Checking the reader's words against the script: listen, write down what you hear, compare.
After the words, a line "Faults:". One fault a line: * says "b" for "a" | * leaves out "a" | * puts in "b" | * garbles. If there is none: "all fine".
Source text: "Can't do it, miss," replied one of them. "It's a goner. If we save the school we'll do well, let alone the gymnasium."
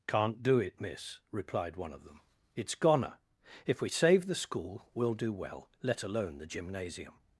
"Can't do it, miss," replied one of them. "It's goner. If we save the school we'll do well, let alone the gymnasium."
Faults:
* leaves out "a"